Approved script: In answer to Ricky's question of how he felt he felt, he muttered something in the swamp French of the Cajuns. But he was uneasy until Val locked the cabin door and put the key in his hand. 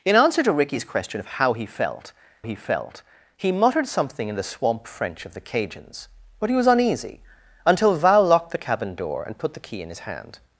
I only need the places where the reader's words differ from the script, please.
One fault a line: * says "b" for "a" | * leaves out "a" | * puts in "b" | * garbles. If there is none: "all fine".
all fine